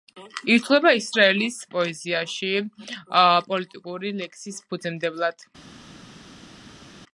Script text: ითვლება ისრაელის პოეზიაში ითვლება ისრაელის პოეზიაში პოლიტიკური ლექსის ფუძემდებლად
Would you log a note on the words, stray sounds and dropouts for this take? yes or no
yes